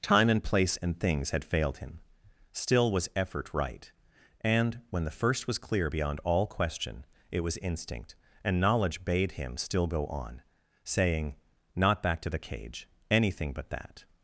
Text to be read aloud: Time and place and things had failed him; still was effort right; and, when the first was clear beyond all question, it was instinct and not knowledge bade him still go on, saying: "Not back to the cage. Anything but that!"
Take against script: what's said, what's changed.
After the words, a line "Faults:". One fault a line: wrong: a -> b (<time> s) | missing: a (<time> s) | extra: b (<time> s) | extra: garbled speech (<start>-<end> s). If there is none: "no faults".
Time and place and things had failed him; still was effort right; and, when the first was clear beyond all question, it was instinct and knowledge bade him still go on, saying: "Not back to the cage. Anything but that!"
Faults:
missing: not (8.6 s)